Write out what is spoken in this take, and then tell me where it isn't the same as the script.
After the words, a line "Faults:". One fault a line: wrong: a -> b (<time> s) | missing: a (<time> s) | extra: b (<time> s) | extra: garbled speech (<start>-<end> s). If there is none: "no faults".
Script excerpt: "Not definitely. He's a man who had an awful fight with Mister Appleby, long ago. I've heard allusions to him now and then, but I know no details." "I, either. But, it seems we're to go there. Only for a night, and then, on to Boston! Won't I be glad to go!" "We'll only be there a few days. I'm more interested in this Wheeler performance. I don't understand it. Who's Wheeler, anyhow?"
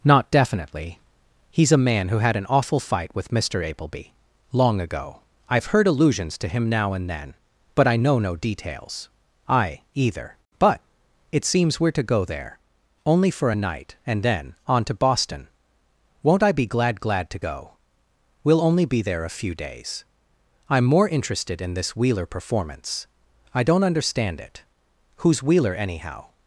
"Not definitely. He's a man who had an awful fight with Mister Appleby, long ago. I've heard allusions to him now and then, but I know no details." "I, either. But, it seems we're to go there. Only for a night, and then, on to Boston! Won't I be glad glad to go!" "We'll only be there a few days. I'm more interested in this Wheeler performance. I don't understand it. Who's Wheeler, anyhow?"
Faults:
extra: glad (17.0 s)